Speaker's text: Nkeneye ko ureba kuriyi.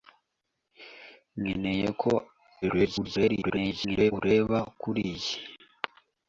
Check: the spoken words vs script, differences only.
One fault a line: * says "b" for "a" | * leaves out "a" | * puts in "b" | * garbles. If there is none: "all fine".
* garbles